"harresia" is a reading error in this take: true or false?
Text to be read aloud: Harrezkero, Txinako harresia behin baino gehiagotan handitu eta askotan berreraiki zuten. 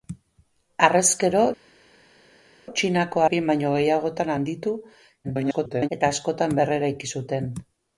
true